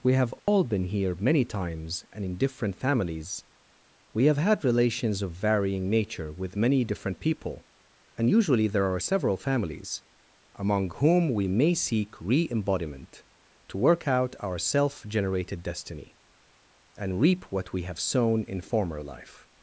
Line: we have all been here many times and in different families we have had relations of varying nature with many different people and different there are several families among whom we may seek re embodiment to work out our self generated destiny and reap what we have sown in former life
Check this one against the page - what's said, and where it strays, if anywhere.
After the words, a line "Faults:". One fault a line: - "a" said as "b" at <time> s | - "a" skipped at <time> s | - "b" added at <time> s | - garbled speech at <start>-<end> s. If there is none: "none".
we have all been here many times and in different families we have had relations of varying nature with many different people and usually there are several families among whom we may seek re embodiment to work out our self generated destiny and reap what we have sown in former life
Faults:
- "different" said as "usually" at 8.3 s